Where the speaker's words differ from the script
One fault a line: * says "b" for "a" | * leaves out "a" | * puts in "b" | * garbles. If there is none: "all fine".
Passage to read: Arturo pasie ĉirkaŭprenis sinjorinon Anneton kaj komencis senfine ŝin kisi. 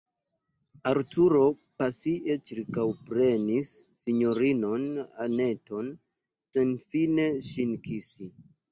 * leaves out "kaj komencis"